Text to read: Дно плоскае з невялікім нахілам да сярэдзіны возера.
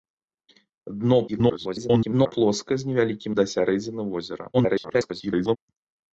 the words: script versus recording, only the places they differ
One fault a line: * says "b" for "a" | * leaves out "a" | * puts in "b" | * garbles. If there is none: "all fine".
* garbles
* leaves out "нахілам"
* garbles